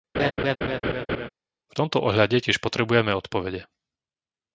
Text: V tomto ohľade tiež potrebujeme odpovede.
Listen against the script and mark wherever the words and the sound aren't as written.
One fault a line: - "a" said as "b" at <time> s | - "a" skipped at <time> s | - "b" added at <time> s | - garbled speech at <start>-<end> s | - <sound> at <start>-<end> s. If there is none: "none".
- laugh at 0.1-1.3 s